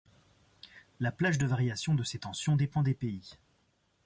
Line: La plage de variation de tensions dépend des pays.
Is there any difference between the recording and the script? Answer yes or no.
yes